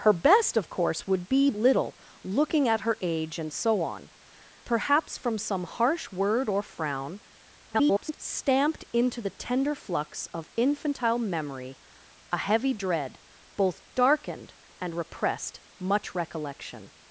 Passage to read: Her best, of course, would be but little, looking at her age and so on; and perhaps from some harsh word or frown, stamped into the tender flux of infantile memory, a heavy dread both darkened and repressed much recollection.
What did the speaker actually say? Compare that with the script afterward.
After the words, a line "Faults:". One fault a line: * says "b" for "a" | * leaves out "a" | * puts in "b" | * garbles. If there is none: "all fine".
Her best, of course, would be little, looking at her age and so on; perhaps from some harsh word or frown, [garbled] stamped into the tender flux of infantile memory, a heavy dread both darkened and repressed much recollection.
Faults:
* leaves out "but"
* leaves out "and"
* garbles